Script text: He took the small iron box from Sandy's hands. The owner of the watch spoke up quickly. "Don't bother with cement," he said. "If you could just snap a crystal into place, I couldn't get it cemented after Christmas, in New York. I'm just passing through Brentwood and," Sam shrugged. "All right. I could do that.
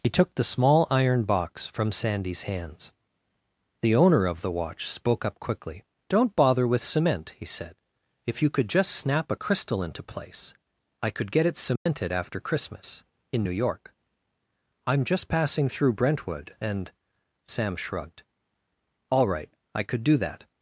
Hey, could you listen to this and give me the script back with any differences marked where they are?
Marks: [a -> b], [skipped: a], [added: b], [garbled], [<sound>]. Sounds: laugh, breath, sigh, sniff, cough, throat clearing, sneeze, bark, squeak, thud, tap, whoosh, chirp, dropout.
He took the small iron box from Sandy's hands. The owner of the watch spoke up quickly. "Don't bother with cement," he said. "If you could just snap a crystal into place, I [couldn't -> could] get it cemented [dropout] after Christmas, in New York. I'm just passing through Brentwood and," Sam shrugged. "All right. I could do that.